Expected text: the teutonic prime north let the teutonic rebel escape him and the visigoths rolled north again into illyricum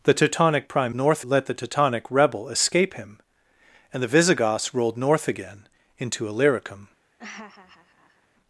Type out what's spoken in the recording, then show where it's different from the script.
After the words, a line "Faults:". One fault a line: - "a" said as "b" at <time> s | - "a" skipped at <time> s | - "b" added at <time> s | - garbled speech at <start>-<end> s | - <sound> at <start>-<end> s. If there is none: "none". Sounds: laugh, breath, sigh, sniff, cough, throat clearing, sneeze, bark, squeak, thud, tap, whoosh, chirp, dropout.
the teutonic prime north let the teutonic rebel escape him and the visigoths rolled north again into illyricum
Faults:
- laugh at 7.2-8.3 s